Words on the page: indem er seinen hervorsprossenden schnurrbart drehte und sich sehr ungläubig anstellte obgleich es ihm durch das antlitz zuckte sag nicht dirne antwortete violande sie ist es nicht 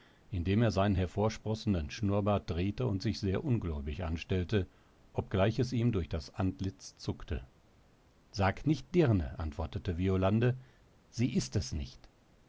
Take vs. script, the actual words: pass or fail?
pass